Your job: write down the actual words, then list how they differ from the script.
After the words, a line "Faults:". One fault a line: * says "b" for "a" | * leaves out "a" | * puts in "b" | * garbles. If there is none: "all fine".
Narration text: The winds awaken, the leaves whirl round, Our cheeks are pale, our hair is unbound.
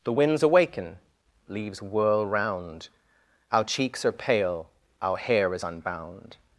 The winds awaken, leaves whirl round, Our cheeks are pale, our hair is unbound.
Faults:
* leaves out "the"